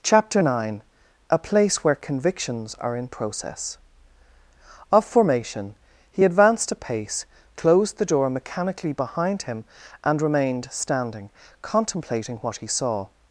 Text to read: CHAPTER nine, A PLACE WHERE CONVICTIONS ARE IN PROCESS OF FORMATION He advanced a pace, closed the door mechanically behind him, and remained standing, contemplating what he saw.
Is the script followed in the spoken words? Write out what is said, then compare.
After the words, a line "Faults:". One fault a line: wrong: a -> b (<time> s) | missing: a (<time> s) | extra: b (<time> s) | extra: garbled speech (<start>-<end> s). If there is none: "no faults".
CHAPTER nine, A PLACE WHERE CONVICTIONS ARE IN PROCESS OF FORMATION He advanced a pace, closed the door mechanically behind him, and remained standing, contemplating what he saw.
Faults:
no faults